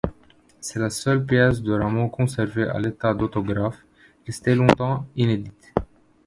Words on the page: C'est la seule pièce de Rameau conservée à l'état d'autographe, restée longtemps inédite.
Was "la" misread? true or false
false